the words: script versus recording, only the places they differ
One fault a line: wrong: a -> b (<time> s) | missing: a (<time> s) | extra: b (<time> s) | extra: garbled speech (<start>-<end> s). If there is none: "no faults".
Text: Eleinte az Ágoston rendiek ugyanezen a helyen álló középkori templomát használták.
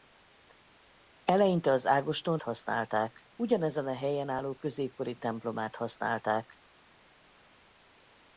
wrong: rendiek -> használták (2.4 s)